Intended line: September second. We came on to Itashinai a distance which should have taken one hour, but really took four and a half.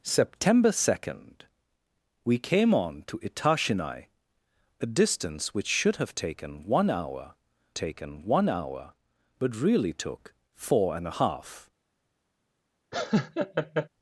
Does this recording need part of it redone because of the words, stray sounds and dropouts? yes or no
yes